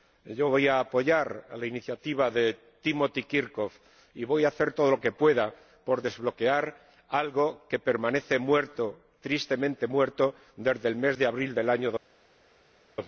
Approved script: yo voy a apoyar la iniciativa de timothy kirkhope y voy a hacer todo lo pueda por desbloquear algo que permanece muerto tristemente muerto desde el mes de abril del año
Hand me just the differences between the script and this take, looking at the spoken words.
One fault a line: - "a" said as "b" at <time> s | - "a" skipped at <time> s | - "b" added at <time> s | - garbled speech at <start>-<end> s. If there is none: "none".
- "que" added at 5.0 s